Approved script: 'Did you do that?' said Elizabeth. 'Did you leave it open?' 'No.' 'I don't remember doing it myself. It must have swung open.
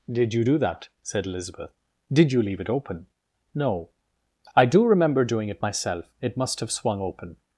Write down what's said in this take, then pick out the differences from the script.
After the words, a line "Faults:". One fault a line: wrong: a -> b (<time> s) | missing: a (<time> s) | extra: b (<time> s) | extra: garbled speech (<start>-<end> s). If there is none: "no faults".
'Did you do that?' said Elizabeth. 'Did you leave it open?' 'No.' 'I do remember doing it myself. It must have swung open.
Faults:
wrong: don't -> do (4.7 s)